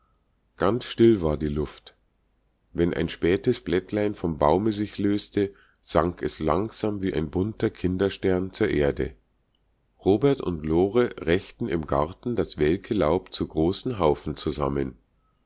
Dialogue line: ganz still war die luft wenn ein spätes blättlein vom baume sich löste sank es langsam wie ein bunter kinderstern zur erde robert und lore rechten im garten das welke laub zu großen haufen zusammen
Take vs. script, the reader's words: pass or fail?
pass